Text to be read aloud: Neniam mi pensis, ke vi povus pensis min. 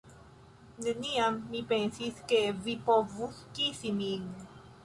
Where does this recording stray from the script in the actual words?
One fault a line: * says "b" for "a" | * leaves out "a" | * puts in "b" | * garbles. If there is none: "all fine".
* says "kisi" for "pensis"